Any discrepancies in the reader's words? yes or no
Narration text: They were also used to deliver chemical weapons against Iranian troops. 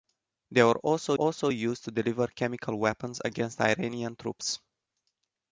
yes